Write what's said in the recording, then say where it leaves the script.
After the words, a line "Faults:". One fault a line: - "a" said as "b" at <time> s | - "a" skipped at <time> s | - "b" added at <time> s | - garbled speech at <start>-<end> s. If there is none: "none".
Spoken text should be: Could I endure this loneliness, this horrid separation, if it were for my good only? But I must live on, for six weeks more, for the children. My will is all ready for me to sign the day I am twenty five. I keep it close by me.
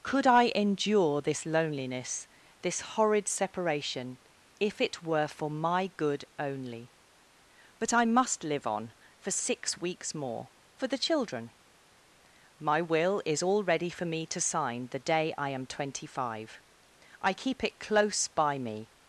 Could I endure this loneliness, this horrid separation, if it were for my good only? But I must live on, for six weeks more, for the children. My will is all ready for me to sign the day I am twenty five. I keep it close by me.
Faults:
none